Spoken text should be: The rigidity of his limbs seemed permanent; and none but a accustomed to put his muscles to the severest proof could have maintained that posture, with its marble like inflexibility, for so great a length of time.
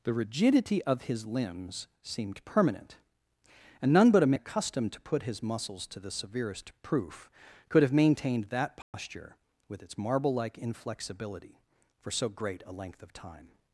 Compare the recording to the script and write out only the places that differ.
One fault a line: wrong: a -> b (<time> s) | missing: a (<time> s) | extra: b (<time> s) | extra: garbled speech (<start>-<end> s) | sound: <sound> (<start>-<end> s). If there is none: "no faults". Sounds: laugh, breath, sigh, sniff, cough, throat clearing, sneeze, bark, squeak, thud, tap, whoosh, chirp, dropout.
sound: dropout (8.8-8.9 s)